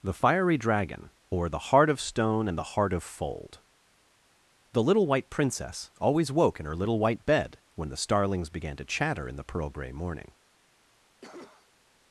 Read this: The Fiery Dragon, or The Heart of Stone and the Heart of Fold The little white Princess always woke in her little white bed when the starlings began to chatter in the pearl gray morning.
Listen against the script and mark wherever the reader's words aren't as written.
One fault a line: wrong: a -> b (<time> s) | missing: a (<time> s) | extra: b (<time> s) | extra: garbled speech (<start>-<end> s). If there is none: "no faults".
no faults